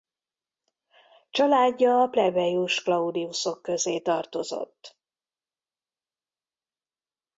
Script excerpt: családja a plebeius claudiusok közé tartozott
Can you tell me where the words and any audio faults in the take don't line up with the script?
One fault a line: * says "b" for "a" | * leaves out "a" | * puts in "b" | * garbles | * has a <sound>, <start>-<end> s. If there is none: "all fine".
all fine